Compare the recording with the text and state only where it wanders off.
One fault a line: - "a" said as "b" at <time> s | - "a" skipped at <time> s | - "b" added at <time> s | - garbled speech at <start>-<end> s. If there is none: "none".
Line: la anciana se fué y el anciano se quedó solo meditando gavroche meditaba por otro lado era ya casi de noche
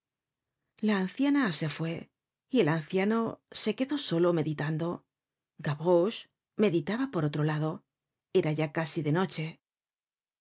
none